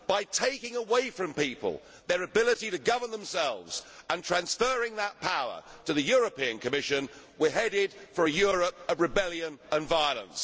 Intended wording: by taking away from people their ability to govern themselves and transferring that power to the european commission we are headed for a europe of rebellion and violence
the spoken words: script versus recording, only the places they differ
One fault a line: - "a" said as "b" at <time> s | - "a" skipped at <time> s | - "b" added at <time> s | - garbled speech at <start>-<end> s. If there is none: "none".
none